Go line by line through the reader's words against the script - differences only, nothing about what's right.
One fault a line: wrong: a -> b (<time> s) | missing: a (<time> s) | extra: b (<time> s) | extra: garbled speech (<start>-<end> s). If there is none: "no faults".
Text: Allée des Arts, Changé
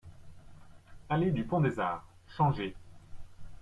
extra: du Pont (1.3 s)